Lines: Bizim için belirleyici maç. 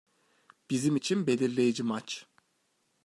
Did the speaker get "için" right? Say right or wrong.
right